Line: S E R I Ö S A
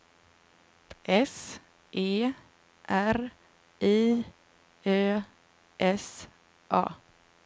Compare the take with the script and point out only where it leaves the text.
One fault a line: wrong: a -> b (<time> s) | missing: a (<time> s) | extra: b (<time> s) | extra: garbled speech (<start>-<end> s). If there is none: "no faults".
no faults